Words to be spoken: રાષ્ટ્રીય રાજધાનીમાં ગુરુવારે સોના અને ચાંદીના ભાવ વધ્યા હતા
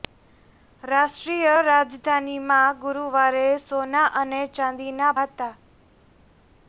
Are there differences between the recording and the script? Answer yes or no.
yes